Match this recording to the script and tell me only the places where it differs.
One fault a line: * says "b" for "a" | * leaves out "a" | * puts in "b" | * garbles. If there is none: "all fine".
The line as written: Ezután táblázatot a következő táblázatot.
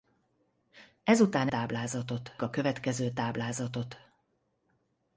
all fine